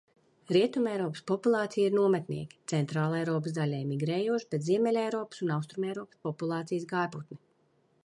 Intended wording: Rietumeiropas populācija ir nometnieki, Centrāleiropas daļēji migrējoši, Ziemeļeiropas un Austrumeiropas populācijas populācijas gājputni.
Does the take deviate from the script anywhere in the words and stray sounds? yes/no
yes